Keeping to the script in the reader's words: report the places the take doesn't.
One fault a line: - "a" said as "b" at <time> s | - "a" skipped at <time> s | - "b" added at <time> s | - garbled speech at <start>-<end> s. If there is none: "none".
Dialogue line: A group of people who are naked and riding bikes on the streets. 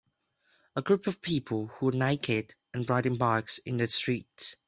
- "on" said as "in" at 3.6 s